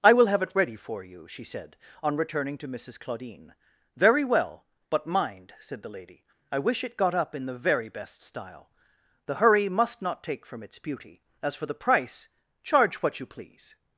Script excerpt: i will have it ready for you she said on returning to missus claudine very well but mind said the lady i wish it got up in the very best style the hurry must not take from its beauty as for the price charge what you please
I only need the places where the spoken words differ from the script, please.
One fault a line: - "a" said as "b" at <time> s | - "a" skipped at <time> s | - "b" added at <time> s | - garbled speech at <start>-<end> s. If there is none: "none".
none